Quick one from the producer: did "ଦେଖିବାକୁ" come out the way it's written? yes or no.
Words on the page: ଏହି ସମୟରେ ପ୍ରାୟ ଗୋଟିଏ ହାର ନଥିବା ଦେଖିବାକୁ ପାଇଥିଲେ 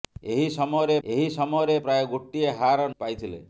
no